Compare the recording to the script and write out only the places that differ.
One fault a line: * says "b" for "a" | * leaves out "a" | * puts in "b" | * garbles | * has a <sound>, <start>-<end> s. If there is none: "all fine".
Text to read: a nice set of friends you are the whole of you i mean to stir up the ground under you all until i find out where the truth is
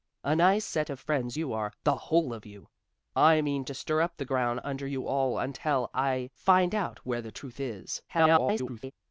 * garbles